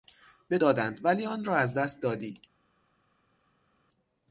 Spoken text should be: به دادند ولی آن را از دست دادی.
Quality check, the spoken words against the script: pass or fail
pass